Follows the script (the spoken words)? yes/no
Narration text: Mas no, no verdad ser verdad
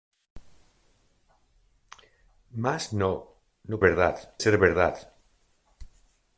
yes